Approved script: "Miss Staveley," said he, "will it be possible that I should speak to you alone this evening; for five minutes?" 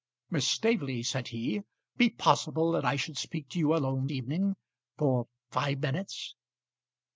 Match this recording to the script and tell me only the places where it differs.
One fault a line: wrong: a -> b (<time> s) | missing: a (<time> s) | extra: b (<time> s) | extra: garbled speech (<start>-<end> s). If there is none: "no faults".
missing: will it (1.6 s)
missing: this (4.1 s)